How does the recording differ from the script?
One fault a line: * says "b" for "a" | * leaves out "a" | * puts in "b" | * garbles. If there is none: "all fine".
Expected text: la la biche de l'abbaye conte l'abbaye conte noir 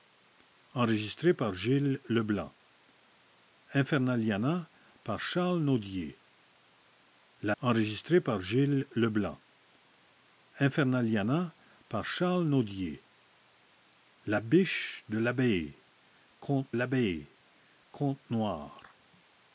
all fine